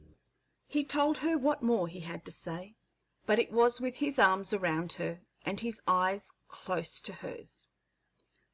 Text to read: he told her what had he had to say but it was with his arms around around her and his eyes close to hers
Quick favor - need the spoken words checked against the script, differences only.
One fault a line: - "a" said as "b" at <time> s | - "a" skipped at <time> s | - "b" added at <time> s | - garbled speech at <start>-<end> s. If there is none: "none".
- "had" said as "more" at 1.6 s
- "around" skipped at 4.9 s